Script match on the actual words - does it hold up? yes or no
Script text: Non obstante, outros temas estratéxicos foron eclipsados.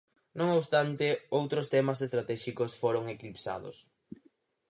yes